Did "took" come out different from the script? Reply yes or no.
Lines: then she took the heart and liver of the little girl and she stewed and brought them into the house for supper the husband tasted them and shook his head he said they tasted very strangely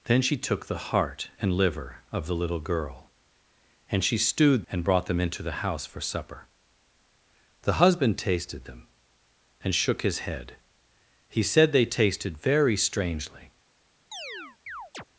no